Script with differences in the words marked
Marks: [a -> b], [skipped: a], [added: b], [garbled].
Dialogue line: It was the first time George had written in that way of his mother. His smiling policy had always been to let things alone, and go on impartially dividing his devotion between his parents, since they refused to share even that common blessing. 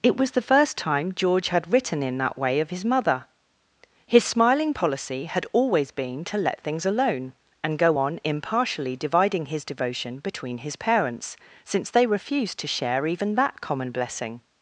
It was the first time George had written in that way of his mother. His smiling policy had always been to let things alone, and go on impartially dividing his devotion between his parents, since they refused to share even that common blessing.